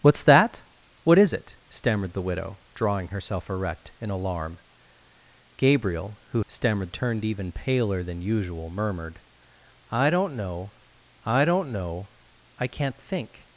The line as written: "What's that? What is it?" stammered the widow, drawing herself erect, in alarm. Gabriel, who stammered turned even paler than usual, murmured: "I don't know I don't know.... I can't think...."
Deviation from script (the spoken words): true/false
false